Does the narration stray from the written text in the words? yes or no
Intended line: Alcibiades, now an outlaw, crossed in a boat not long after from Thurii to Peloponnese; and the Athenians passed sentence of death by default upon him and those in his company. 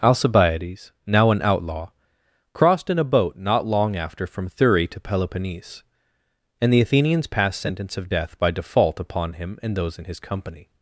no